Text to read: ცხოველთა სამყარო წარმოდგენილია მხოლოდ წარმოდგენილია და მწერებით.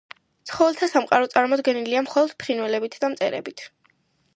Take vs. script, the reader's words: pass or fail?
fail